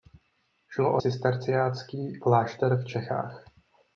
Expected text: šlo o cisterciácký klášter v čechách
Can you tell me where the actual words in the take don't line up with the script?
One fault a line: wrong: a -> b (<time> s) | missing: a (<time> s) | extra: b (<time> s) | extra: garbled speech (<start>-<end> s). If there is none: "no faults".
no faults